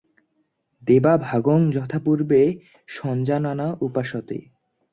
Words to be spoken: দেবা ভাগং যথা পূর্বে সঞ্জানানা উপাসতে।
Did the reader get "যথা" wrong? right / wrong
right